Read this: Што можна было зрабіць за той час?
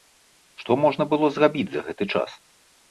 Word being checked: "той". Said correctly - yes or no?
no